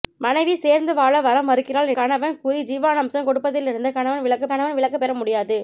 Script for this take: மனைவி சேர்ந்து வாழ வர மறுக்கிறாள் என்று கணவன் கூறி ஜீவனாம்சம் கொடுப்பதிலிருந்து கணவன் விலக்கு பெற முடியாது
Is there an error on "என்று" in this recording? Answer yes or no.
yes